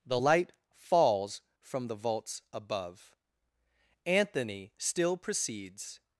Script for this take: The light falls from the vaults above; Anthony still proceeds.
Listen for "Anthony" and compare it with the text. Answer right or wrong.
right